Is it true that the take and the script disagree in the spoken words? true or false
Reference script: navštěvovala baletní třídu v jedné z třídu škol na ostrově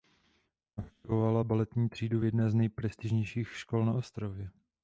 true